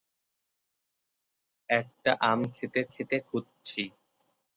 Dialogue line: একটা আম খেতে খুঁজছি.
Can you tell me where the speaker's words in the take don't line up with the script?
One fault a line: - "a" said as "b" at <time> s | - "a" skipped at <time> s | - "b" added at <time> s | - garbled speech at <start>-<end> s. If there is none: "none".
- "খেতে" added at 2.9 s